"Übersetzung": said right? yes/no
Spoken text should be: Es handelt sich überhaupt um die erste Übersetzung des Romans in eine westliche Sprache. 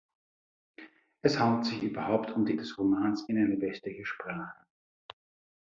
no